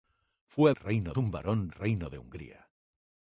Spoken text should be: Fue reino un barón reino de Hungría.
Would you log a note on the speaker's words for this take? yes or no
no